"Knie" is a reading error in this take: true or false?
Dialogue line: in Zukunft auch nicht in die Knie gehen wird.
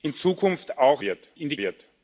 true